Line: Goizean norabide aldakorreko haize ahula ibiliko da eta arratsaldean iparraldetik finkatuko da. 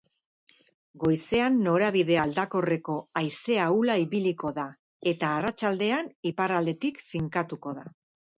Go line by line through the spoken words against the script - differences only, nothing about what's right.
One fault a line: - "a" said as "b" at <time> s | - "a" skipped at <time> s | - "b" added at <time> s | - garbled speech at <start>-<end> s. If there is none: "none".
none